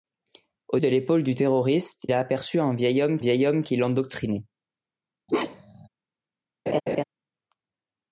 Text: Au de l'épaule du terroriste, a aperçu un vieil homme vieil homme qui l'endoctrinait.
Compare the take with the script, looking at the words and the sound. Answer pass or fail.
fail